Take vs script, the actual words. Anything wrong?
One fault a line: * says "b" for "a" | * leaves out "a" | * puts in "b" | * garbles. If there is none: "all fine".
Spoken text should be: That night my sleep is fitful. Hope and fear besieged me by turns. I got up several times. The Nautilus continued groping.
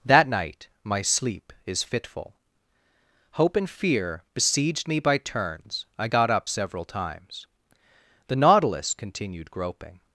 all fine